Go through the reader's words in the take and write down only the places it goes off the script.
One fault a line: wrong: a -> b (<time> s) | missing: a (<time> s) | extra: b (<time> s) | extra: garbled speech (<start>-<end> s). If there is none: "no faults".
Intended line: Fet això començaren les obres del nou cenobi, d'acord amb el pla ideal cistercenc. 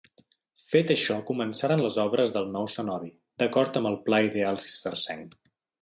no faults